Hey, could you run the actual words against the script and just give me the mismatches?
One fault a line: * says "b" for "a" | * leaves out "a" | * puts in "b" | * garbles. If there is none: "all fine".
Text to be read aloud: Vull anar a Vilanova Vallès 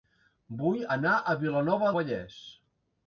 all fine